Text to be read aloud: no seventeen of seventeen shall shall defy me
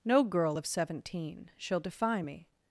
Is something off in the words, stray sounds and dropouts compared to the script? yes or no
yes